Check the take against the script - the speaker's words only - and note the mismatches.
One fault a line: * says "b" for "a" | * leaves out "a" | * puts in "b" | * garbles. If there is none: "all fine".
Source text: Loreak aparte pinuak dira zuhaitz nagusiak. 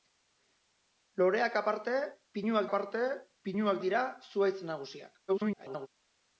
* puts in "aparte pinuak"
* garbles